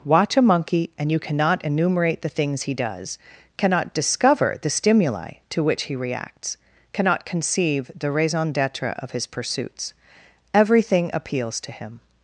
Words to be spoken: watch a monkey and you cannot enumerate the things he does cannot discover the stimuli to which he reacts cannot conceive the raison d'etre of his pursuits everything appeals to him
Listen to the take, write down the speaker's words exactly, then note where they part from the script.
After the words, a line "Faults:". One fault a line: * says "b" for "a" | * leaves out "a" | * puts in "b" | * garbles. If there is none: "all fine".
watch a monkey and you cannot enumerate the things he does cannot discover the stimuli to which he reacts cannot conceive the raison d'etre of his pursuits everything appeals to him
Faults:
all fine